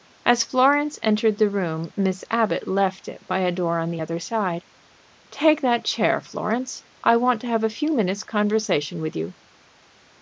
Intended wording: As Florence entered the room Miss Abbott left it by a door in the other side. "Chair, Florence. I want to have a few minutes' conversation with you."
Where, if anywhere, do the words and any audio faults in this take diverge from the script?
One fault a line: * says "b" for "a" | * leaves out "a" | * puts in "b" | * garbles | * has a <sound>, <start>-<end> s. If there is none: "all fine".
* says "on" for "in"
* puts in "Take that"